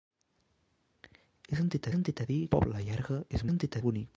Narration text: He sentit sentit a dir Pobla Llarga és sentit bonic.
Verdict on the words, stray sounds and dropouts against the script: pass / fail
pass